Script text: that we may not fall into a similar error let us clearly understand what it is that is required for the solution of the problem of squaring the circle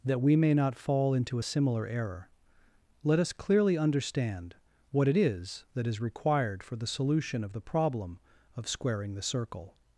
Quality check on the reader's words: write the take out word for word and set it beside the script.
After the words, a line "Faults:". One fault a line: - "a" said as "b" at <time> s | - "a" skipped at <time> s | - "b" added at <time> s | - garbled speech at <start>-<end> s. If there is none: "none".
that we may not fall into a similar error let us clearly understand what it is that is required for the solution of the problem of squaring the circle
Faults:
none